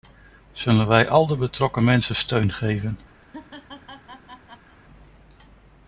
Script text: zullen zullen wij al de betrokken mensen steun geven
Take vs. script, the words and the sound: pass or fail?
fail